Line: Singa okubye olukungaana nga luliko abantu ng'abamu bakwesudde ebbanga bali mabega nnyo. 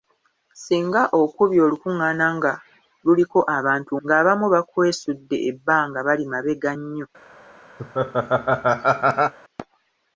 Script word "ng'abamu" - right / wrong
right